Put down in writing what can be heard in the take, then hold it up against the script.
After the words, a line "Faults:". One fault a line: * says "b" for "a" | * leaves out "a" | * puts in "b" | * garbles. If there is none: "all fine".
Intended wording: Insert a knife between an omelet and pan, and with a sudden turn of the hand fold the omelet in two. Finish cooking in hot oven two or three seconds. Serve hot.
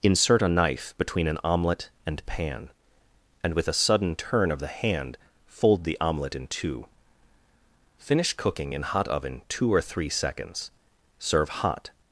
Insert a knife between an omelet and pan, and with a sudden turn of the hand fold the omelet in two. Finish cooking in hot oven two or three seconds. Serve hot.
Faults:
all fine